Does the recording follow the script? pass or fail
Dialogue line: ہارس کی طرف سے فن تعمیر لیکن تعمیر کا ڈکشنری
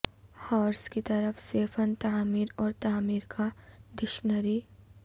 fail